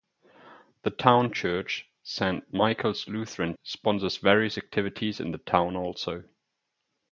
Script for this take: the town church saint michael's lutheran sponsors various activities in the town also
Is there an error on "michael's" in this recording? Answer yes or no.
no